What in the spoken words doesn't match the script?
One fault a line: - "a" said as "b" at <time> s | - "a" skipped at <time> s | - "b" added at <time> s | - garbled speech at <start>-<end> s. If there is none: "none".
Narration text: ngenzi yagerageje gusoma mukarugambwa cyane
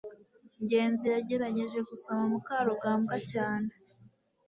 none